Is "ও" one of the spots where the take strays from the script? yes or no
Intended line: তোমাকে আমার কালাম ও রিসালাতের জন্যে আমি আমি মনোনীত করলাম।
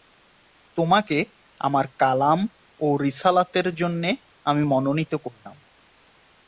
no